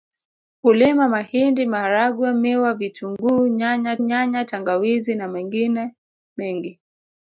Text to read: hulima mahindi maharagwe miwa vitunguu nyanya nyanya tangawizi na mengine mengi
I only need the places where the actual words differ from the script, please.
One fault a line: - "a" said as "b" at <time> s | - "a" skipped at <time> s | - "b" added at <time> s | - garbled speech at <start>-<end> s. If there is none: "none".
none